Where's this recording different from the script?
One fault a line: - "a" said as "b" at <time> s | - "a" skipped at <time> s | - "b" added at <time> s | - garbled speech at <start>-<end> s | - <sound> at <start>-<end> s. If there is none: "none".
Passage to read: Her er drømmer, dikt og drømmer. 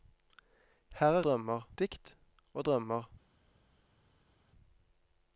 none